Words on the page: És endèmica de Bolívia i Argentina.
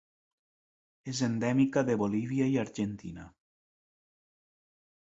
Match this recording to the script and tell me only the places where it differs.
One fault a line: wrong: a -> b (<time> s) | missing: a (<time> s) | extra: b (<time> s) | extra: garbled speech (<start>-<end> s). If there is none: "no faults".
no faults